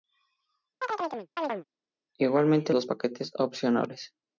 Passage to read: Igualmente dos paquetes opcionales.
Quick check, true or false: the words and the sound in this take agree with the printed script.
false